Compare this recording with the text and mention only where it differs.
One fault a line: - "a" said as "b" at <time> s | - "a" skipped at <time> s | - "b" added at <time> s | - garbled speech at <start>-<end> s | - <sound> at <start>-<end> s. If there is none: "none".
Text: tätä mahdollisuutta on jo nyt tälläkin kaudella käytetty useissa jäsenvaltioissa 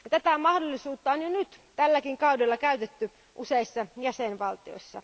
none